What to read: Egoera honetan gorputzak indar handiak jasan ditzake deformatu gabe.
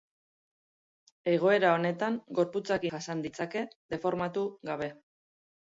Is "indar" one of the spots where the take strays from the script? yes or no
yes